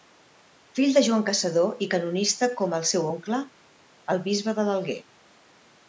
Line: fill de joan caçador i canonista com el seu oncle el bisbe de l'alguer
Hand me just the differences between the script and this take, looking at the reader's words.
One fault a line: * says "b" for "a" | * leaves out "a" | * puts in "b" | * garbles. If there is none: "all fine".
all fine